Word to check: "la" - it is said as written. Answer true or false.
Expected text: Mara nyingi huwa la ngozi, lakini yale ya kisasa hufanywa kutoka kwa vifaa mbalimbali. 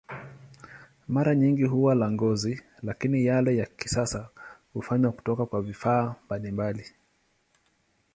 true